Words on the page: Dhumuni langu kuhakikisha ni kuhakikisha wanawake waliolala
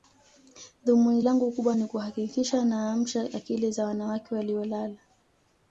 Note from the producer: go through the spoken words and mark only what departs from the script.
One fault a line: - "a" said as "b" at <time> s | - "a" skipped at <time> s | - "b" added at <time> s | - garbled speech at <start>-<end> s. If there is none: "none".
- "kuhakikisha" said as "kubwa" at 1.5 s
- "naamsha akili za" added at 2.6 s